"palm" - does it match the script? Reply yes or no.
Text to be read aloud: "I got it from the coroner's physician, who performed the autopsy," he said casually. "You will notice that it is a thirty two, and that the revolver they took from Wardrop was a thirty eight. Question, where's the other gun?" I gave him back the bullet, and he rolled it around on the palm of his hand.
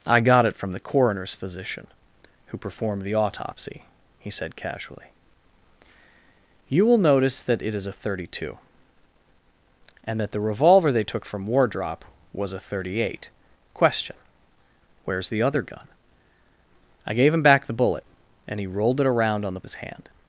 no